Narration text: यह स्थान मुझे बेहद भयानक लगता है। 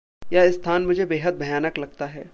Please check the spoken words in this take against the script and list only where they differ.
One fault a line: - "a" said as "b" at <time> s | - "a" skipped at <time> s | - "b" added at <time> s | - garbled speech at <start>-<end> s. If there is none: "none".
none